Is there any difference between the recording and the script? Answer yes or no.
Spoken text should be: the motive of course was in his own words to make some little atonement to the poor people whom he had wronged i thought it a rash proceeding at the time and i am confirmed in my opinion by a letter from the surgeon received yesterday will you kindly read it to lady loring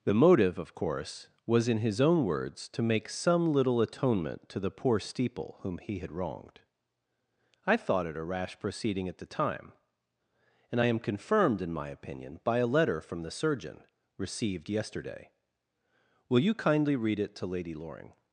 yes